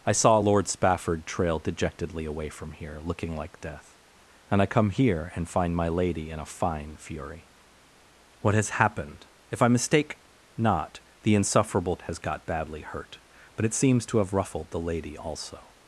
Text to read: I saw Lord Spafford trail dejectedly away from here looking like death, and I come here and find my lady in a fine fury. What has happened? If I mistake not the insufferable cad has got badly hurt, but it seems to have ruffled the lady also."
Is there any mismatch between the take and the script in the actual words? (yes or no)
yes